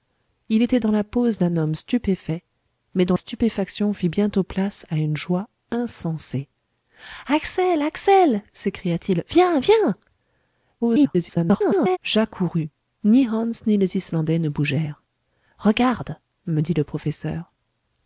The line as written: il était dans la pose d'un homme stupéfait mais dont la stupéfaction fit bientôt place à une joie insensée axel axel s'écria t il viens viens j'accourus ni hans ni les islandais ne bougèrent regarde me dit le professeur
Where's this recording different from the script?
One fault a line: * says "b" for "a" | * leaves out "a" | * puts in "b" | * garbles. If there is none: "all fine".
* leaves out "la"
* garbles